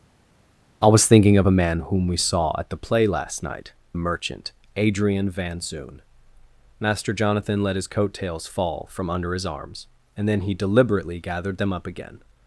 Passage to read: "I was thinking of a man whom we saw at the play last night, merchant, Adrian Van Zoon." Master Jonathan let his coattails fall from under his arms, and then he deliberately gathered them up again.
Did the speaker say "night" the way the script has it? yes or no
yes